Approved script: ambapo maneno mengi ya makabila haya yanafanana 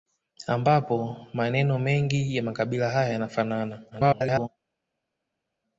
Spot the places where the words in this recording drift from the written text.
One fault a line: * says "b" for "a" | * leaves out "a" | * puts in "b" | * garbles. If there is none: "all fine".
* garbles